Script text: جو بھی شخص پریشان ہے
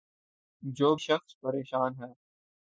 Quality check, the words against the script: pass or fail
fail